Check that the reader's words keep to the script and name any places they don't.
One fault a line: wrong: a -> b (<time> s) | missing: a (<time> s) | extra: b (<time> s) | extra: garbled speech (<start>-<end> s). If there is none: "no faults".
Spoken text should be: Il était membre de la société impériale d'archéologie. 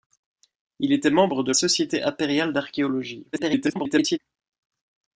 missing: la (1.5 s)
extra: garbled speech (3.3-4.2 s)